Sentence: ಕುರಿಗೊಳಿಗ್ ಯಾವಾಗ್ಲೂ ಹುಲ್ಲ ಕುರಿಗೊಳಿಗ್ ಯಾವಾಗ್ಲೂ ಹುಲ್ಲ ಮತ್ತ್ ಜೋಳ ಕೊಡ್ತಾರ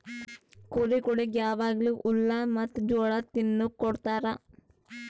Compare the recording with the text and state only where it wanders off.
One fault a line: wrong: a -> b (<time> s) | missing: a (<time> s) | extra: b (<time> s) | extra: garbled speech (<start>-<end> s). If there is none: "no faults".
missing: ಕುರಿಗೊಳಿಗ್ ಯಾವಾಗ್ಲೂ ಹುಲ್ಲ (2.3 s)
extra: ತಿನುಕ್ (3.3 s)